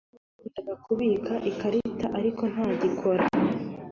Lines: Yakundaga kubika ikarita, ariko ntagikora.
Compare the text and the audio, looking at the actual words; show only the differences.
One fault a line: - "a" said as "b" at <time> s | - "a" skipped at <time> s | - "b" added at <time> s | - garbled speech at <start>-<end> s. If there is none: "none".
none